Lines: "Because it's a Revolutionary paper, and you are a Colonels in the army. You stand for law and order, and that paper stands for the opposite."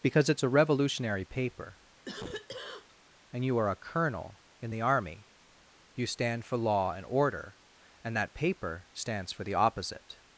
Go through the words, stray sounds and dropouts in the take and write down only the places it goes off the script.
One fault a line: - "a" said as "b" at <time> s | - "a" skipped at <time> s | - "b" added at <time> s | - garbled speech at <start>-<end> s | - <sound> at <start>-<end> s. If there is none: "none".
- cough at 2.1-3.0 s
- "Colonels" said as "Colonel" at 3.8 s